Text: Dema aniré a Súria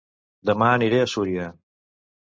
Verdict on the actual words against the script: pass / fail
pass